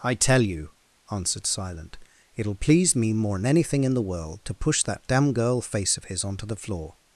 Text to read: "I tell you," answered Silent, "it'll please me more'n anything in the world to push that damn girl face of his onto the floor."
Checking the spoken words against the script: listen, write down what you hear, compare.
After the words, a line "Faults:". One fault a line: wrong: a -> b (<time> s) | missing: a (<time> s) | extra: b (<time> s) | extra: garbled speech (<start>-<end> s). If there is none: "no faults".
"I tell you," answered Silent, "it'll please me more'n anything in the world to push that damn girl face of his onto the floor."
Faults:
no faults